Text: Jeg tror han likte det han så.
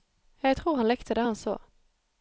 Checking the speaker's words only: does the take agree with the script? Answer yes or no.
yes